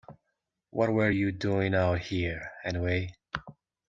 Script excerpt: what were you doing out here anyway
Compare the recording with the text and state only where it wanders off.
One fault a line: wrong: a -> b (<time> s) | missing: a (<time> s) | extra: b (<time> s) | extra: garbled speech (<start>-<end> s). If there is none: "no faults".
no faults